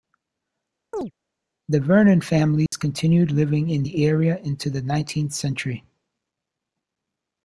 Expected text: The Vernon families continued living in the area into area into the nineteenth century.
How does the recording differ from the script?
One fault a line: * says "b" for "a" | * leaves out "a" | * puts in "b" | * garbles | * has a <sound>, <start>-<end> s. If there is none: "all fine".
* has a chirp, 0.9-1.1 s
* has a dropout, 2.7-2.7 s
* leaves out "area into"